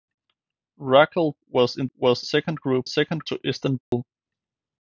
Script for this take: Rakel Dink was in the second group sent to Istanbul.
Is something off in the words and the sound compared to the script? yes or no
yes